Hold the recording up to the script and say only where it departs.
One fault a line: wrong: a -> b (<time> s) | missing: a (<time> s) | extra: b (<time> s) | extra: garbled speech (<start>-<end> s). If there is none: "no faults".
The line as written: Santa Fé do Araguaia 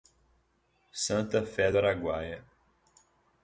no faults